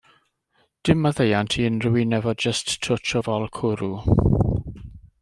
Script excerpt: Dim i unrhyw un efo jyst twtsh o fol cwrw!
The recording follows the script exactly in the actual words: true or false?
false